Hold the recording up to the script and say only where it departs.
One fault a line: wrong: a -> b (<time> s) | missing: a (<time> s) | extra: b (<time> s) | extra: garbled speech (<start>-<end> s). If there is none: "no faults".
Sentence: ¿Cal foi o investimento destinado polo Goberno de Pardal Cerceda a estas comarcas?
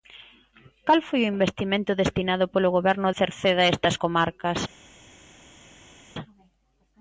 missing: de Pardal (3.1 s)